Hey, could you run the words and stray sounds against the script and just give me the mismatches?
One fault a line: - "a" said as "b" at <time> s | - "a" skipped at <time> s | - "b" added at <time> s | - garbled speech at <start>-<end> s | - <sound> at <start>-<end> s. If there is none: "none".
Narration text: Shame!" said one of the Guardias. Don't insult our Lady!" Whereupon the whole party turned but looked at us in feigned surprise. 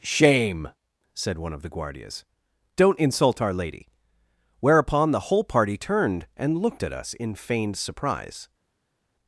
- "but" said as "and" at 6.4 s